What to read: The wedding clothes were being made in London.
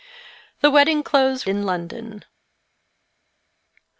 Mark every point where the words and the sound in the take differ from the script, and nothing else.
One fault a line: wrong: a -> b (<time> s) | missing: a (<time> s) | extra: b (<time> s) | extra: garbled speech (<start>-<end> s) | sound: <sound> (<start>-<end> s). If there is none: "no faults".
missing: were being made (1.4 s)